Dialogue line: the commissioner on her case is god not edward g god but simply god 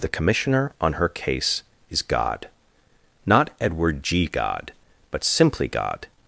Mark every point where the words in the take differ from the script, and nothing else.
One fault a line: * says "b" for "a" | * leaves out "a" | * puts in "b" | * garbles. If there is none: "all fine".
all fine